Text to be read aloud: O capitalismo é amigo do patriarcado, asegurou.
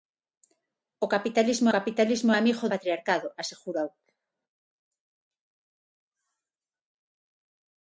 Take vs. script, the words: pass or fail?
fail